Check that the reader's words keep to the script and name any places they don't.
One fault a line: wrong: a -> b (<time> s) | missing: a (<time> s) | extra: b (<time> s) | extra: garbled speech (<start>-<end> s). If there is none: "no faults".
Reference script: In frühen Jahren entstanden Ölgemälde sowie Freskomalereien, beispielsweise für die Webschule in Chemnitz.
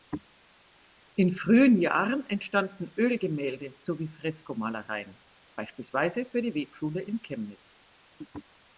no faults